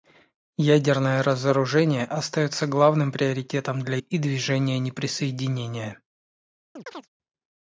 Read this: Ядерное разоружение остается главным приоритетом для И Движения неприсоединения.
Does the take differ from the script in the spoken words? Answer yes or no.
no